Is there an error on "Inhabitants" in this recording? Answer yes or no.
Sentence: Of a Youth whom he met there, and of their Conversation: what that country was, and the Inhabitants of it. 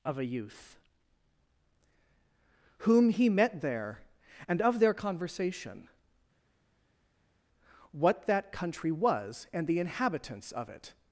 no